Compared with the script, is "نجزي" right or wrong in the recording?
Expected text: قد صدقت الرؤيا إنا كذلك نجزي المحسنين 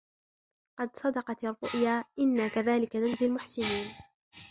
right